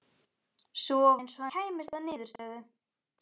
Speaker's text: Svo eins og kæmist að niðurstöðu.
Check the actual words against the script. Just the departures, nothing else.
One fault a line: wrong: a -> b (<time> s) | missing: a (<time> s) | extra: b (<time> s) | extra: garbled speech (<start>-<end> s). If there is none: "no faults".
no faults